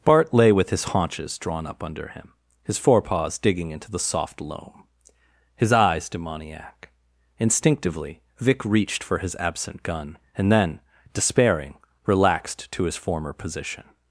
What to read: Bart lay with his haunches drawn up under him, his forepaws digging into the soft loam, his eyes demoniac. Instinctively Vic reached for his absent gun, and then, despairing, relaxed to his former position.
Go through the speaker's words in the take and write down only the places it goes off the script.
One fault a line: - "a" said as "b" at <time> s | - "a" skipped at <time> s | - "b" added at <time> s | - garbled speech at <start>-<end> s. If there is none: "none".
none